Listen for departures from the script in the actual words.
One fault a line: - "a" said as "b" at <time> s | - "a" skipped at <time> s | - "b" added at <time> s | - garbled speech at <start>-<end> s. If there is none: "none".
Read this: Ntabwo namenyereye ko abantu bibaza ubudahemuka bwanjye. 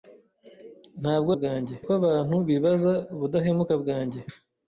- "namenyereye" said as "bwanjye" at 1.4 s